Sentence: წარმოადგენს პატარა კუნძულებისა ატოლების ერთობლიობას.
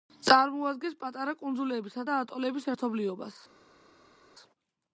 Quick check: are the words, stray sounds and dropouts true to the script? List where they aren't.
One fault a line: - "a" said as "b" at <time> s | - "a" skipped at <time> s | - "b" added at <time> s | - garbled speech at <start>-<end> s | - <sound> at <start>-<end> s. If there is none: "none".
- "და" added at 2.1 s